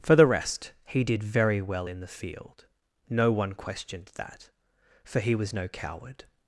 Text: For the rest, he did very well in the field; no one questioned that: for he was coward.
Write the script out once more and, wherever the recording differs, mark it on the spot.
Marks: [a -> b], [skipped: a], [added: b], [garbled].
For the rest, he did very well in the field; no one questioned that: for he was [added: no] coward.